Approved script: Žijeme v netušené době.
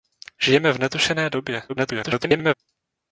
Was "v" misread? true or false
false